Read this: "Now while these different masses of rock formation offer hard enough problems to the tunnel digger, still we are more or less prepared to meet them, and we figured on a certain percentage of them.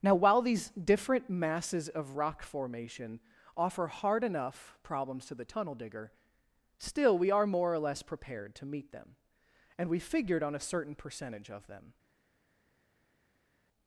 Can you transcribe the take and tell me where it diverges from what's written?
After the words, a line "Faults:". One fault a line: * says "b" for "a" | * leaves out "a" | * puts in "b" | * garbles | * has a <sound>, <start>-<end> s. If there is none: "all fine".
"Now while these different masses of rock formation offer hard enough problems to the tunnel digger, still we are more or less prepared to meet them, and we figured on a certain percentage of them.
Faults:
all fine